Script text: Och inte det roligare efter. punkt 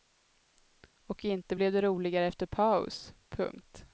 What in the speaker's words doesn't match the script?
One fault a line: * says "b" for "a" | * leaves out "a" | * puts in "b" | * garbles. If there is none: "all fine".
* puts in "blev"
* puts in "paus"